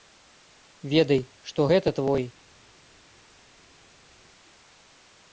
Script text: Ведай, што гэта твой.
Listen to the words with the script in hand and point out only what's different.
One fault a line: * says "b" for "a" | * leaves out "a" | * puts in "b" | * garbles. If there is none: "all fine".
all fine